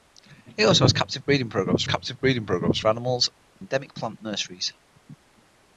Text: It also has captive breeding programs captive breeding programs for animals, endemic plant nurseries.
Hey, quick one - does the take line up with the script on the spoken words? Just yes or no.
yes